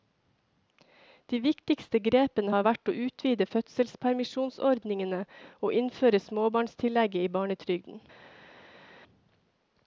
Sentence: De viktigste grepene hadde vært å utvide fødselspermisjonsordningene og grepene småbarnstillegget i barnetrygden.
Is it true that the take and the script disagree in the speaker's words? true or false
true